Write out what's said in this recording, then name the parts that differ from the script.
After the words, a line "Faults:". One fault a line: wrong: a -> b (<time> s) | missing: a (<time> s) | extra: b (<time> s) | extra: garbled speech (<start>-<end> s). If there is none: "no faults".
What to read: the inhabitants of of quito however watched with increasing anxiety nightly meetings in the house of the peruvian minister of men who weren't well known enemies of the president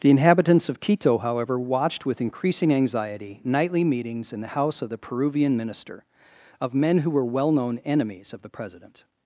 the inhabitants of quito however watched with increasing anxiety nightly meetings in the house of the peruvian minister of men who were well known enemies of the president
Faults:
missing: of (0.8 s)
wrong: weren't -> were (7.1 s)